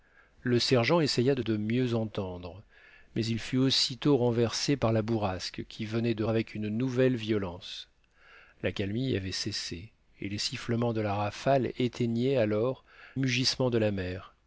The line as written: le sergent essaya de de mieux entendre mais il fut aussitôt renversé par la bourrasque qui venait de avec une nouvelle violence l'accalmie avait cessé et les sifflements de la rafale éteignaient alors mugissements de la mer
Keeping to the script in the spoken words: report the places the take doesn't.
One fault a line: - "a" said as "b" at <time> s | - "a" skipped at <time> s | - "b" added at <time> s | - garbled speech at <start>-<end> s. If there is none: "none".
none